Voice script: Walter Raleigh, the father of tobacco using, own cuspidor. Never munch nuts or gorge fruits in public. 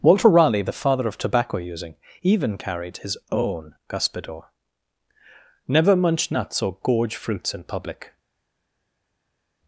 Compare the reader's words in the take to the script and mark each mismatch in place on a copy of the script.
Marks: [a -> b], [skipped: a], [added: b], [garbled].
Walter Raleigh, the father of tobacco using, [added: even carried his] own cuspidor. Never munch nuts or gorge fruits in public.